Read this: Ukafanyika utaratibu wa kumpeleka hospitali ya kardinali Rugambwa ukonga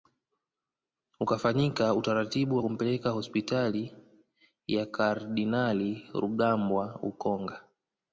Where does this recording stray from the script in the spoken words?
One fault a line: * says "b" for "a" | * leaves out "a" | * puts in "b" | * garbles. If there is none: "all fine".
all fine